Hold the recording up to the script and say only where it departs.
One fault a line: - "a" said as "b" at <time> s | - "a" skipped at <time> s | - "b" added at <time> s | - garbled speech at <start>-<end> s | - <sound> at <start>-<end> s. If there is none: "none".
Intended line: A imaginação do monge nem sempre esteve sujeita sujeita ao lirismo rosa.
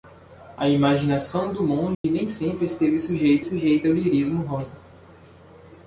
- dropout at 1.9-2.0 s